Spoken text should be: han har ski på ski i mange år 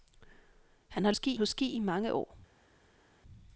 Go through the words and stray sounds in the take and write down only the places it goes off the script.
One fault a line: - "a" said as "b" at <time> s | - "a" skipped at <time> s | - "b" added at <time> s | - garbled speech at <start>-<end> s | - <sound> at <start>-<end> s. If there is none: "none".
none